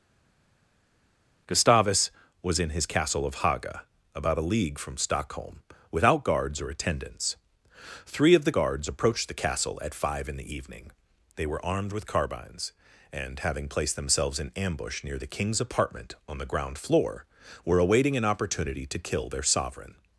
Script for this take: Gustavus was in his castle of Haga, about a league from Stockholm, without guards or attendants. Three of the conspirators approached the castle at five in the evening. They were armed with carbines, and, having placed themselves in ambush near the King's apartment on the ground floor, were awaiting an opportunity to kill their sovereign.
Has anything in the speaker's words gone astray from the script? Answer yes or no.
yes